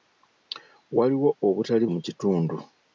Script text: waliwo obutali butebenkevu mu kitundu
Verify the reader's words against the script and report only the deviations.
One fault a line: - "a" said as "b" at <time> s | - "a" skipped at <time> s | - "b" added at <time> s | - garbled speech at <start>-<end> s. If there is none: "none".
- "butebenkevu" skipped at 1.9 s